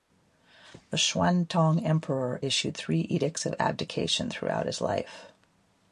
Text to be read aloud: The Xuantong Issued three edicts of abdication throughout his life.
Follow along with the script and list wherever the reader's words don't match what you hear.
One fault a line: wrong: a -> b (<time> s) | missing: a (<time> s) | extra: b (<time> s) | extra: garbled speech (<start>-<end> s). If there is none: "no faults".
extra: Emperor (1.9 s)